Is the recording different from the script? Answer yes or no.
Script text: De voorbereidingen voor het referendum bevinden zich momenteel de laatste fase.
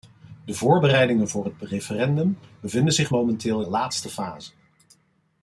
no